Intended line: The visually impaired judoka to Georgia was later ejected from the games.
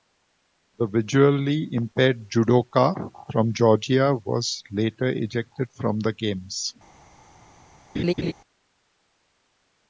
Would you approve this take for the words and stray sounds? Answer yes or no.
no